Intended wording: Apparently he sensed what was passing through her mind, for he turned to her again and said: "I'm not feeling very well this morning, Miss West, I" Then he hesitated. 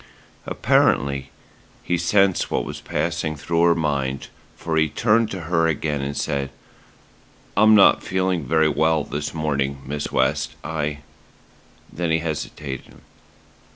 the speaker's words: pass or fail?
pass